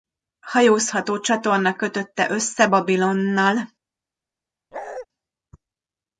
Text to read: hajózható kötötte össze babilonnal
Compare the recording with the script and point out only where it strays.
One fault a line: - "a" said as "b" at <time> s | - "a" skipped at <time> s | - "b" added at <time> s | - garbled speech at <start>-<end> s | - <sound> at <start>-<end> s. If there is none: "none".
- "csatorna" added at 1.2 s
- bark at 4.7-5.1 s